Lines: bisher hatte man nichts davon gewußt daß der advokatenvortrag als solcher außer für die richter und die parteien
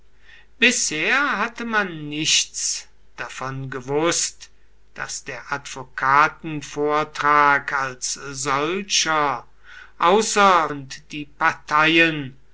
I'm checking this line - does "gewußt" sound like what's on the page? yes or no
yes